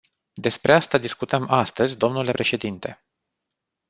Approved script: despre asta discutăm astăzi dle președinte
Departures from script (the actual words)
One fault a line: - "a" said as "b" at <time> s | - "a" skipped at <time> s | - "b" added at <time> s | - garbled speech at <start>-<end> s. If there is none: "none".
none